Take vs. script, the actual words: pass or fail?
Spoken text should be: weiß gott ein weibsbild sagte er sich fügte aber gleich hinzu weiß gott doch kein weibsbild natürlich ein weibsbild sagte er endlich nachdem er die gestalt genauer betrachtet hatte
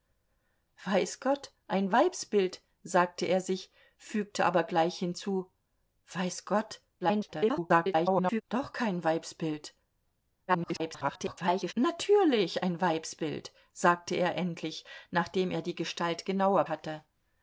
fail